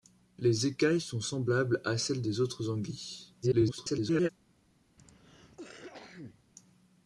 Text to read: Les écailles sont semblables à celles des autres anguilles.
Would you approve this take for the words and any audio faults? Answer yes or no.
no